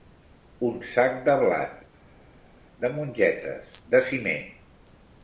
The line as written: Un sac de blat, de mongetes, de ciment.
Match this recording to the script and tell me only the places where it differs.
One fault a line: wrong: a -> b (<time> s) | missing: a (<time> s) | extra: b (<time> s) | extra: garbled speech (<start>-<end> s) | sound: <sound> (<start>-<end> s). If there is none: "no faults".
no faults